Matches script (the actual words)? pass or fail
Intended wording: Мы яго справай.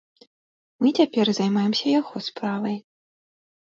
fail